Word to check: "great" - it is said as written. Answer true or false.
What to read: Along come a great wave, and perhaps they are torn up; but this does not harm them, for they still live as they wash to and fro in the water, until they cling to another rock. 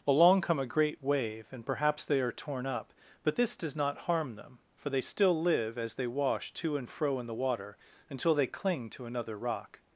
true